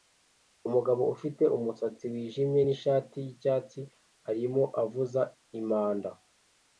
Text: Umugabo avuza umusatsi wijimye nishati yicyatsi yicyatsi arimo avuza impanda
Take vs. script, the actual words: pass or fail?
fail